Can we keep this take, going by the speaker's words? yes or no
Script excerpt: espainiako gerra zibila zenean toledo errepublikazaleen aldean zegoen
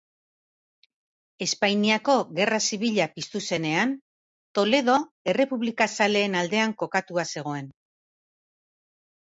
no